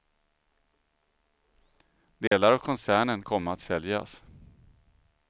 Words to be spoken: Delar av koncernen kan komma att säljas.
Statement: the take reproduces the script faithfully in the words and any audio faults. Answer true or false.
false